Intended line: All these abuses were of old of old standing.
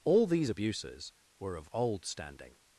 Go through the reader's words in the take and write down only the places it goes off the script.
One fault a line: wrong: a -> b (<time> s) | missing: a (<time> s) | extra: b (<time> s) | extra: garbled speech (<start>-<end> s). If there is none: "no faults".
missing: of old (2.0 s)